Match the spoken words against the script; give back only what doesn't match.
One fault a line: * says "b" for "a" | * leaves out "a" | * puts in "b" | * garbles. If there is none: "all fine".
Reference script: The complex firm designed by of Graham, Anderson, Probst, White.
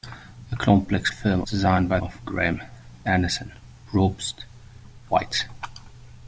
all fine